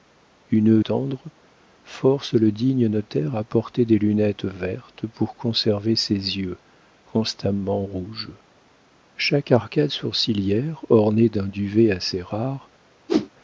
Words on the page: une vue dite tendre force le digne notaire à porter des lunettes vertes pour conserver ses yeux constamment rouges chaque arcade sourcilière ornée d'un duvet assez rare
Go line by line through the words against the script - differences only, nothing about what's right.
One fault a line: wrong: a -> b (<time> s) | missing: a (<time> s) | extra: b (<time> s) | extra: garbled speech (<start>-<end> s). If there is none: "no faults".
missing: vue dite (0.8 s)